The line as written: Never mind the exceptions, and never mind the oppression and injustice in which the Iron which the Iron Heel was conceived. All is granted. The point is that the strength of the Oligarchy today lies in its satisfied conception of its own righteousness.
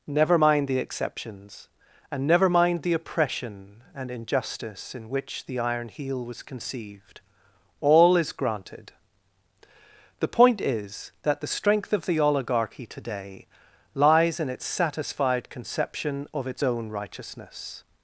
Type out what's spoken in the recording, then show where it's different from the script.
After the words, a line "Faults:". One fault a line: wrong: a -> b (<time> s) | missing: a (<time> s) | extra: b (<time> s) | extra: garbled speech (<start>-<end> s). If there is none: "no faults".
Never mind the exceptions, and never mind the oppression and injustice in which the Iron Heel was conceived. All is granted. The point is that the strength of the Oligarchy today lies in its satisfied conception of its own righteousness.
Faults:
missing: which the Iron (5.9 s)